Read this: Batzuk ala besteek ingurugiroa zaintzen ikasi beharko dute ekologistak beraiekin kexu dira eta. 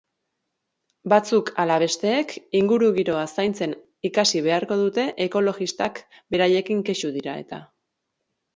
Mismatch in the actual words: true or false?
false